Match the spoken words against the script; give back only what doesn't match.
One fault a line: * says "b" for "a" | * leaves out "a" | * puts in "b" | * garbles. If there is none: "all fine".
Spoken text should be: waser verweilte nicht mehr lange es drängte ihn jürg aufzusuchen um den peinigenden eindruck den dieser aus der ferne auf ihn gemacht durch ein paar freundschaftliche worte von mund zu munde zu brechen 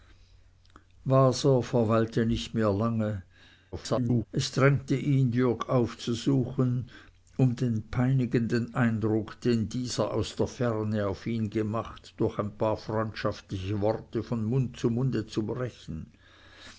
* garbles